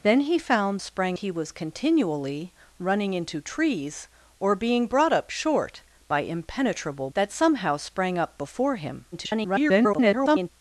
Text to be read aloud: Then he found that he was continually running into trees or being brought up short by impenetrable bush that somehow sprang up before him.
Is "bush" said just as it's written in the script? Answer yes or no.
no